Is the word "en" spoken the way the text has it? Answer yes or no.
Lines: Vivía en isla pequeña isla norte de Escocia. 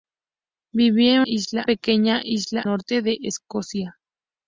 yes